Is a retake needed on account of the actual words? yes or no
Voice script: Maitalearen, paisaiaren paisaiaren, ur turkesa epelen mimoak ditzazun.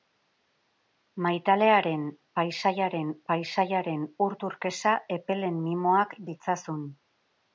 no